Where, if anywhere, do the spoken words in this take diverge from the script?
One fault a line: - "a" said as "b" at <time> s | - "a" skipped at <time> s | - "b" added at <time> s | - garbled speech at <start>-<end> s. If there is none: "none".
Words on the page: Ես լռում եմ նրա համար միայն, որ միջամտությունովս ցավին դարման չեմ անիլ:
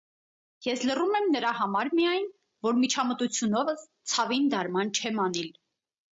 none